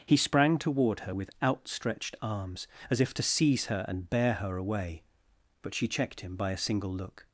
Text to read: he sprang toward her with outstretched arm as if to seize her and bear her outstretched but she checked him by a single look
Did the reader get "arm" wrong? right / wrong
wrong